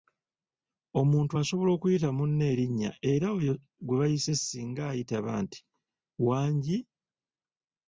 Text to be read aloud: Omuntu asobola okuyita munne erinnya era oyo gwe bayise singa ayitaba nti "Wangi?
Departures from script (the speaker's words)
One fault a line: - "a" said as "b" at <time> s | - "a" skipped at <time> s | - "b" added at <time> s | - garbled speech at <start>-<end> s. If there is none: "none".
none